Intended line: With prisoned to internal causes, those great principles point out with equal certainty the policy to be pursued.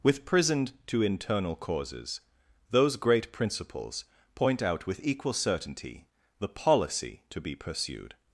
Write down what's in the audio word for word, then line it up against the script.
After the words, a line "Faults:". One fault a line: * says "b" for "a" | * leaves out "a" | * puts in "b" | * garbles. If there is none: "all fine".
With prisoned to internal causes, those great principles point out with equal certainty the policy to be pursued.
Faults:
all fine